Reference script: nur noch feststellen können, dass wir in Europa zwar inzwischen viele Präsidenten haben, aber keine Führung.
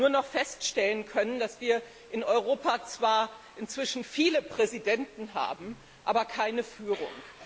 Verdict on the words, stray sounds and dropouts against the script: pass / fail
pass